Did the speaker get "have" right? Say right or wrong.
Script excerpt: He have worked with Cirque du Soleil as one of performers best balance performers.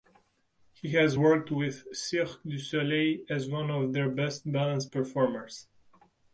wrong